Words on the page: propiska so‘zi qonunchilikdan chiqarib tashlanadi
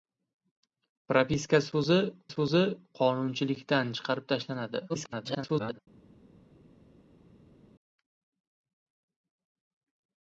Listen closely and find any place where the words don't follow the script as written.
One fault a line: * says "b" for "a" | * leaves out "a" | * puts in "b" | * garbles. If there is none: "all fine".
* puts in "so‘zi"
* garbles